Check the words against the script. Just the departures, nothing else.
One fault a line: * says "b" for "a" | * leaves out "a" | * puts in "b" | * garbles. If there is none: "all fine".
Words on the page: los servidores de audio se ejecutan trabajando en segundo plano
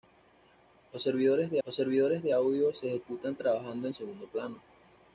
* puts in "los servidores de"